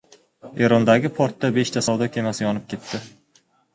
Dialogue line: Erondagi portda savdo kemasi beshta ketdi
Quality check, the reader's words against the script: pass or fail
fail